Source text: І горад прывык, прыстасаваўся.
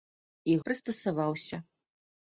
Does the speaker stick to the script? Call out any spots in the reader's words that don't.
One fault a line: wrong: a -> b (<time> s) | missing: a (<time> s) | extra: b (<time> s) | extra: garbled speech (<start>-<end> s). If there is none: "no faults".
missing: горад прывык (0.6 s)